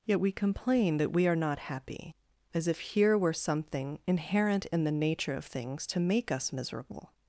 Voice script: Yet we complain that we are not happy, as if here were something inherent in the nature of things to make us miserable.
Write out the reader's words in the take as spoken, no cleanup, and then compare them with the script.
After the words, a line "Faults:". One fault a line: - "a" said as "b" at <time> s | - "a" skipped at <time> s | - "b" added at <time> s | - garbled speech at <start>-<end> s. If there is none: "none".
Yet we complain that we are not happy, as if here were something inherent in the nature of things to make us miserable.
Faults:
none